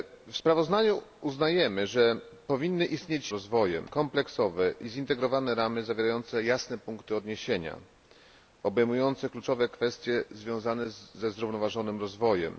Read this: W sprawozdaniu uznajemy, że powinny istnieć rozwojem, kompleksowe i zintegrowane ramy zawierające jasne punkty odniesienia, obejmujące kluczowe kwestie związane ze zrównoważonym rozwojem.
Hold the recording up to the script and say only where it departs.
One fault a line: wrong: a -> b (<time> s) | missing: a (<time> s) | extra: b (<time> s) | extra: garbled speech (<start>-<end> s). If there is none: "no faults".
no faults